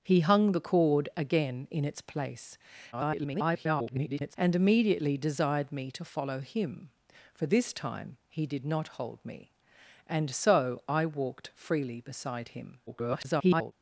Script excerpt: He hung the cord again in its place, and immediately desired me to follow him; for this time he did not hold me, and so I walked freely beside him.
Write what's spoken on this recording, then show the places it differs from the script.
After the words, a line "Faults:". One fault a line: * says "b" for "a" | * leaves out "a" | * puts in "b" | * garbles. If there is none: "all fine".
He hung the cord again in its place, [garbled] and immediately desired me to follow him; for this time he did not hold me, and so I walked freely beside him. [garbled]
Faults:
* garbles
* garbles